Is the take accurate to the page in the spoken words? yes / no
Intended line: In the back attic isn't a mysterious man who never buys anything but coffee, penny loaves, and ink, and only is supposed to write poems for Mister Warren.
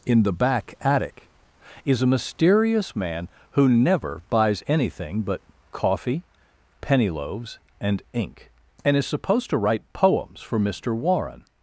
no